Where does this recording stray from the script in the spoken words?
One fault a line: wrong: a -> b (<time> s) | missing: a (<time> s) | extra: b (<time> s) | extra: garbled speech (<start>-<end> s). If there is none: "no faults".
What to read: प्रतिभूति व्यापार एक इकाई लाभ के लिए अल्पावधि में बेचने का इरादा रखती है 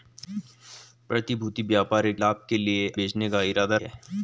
missing: इकाई (2.2 s)
missing: अल्पावधि में (2.9 s)
missing: रखती (3.8 s)